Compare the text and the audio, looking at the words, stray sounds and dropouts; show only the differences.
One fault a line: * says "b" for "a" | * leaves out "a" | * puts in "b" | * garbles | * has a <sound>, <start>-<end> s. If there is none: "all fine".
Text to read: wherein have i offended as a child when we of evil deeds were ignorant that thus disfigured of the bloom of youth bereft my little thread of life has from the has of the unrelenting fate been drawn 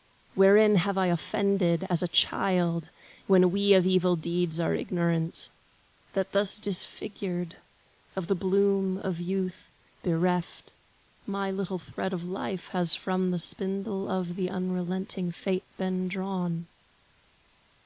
* says "are" for "were"
* says "spindle" for "has"